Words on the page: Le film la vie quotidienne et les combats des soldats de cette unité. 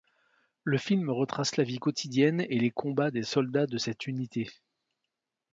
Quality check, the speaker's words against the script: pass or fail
fail